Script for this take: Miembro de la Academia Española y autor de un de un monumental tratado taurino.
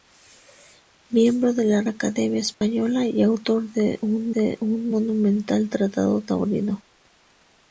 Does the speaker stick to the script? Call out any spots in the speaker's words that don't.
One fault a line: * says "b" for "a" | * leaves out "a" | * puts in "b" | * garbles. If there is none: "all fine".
all fine